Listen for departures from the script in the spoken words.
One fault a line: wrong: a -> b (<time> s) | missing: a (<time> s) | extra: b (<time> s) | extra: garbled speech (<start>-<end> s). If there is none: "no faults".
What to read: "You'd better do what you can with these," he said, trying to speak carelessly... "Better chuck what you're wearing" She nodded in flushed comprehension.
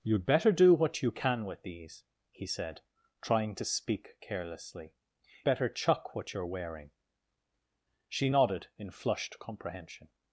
no faults